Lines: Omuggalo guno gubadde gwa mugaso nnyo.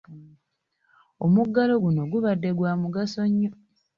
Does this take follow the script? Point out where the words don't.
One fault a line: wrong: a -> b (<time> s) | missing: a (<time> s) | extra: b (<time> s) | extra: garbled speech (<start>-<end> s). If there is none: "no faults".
no faults